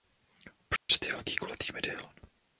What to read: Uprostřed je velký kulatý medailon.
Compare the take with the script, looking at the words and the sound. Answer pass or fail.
fail